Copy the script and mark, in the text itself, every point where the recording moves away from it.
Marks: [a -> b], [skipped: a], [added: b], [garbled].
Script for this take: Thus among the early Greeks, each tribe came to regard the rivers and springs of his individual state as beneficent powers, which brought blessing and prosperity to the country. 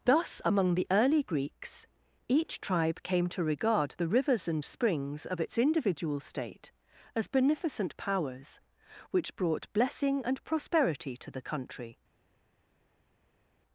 Thus among the early Greeks, each tribe came to regard the rivers and springs of [his -> its] individual state as beneficent powers, which brought blessing and prosperity to the country.